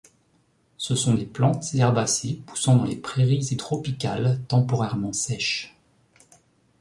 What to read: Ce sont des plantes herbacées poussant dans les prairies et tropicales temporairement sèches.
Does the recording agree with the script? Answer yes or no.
yes